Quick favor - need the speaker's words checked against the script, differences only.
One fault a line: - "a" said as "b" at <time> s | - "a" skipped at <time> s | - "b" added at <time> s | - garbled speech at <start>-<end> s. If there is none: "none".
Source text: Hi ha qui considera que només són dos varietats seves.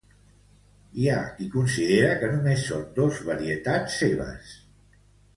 none